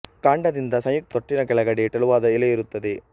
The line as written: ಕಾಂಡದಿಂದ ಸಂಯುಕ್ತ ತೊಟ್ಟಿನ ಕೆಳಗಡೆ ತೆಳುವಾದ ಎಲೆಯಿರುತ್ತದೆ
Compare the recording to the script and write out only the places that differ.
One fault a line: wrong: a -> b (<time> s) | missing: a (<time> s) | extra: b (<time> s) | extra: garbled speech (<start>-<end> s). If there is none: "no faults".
no faults